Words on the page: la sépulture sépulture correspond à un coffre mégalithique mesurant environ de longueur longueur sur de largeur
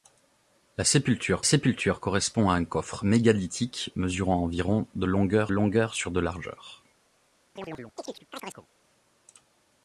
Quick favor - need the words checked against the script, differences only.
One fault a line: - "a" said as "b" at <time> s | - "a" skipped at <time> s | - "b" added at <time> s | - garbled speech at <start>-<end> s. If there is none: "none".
none